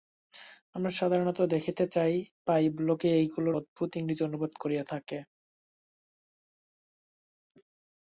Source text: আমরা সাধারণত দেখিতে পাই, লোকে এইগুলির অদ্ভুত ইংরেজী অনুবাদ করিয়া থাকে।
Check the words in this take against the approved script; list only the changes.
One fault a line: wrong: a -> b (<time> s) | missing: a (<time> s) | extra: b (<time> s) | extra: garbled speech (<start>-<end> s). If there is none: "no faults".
no faults